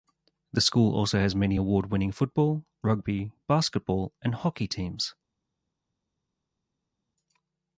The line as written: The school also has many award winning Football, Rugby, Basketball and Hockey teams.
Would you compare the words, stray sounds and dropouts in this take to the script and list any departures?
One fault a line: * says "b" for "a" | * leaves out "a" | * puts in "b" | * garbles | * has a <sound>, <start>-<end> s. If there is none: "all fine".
all fine